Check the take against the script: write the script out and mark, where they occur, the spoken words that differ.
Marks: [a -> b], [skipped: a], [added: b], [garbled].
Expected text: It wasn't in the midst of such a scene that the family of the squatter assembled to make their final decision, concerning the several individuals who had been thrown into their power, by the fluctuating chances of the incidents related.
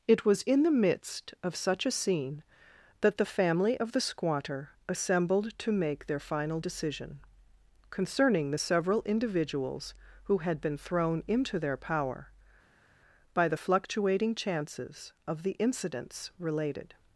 It [wasn't -> was] in the midst of such a scene that the family of the squatter assembled to make their final decision, concerning the several individuals who had been thrown into their power, by the fluctuating chances of the incidents related.